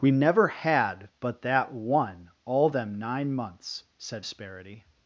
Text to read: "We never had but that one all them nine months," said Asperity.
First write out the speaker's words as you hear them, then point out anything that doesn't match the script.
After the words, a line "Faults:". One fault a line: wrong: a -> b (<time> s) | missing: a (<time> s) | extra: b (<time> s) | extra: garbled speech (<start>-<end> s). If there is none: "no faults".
"We never had but that one all them nine months," said Asperity.
Faults:
no faults